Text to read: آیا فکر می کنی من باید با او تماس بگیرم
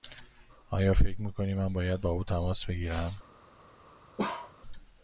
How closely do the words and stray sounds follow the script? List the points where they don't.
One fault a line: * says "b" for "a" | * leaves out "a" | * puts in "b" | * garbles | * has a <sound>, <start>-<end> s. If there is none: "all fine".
* has a bark, 4.2-4.5 s